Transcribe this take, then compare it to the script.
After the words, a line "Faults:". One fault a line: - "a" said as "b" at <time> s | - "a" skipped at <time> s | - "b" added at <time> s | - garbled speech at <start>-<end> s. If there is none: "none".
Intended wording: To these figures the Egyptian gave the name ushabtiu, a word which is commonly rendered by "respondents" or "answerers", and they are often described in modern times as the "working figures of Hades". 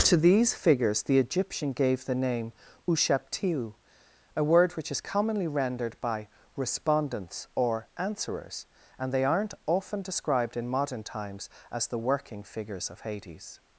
To these figures the Egyptian gave the name ushabtiu, a word which is commonly rendered by "respondents" or "answerers", and they aren't often described in modern times as the "working figures of Hades".
Faults:
- "are" said as "aren't" at 9.2 s